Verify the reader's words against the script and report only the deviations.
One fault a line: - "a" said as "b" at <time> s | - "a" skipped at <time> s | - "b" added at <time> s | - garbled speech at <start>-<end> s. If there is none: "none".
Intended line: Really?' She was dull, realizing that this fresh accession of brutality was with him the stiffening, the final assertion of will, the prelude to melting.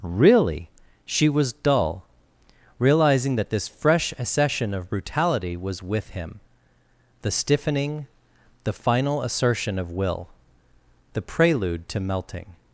none